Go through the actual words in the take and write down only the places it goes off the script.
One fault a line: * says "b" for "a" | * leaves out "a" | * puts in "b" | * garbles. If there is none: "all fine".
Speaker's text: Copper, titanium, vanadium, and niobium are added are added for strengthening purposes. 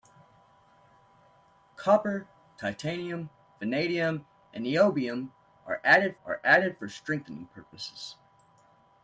all fine